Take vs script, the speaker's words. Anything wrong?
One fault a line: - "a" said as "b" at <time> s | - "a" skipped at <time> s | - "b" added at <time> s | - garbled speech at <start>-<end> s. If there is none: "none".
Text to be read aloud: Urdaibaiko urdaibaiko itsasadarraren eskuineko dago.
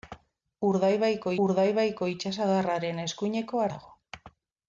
none